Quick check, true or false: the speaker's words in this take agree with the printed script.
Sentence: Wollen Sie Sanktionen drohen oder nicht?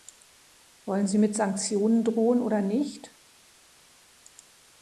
false